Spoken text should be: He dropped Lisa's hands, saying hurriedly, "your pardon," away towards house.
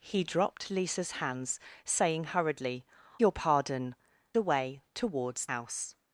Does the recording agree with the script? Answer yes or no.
yes